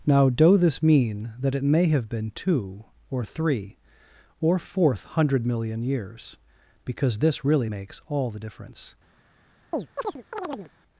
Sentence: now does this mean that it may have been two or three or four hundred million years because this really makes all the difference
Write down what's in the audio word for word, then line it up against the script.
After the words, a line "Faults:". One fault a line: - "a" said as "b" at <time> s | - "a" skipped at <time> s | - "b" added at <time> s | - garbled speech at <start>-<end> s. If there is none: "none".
now doe this mean that it may have been two or three or fourth hundred million years because this really makes all the difference
Faults:
- "does" said as "doe" at 0.3 s
- "four" said as "fourth" at 4.6 s